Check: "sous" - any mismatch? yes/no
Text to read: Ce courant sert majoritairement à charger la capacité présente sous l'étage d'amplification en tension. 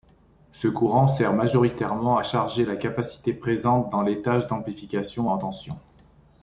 yes